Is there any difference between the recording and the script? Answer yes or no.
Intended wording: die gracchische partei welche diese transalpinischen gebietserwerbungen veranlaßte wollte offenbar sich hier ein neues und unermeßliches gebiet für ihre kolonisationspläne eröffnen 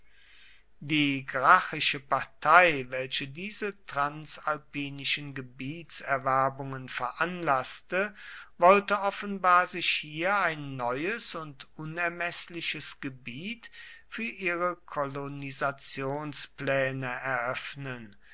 no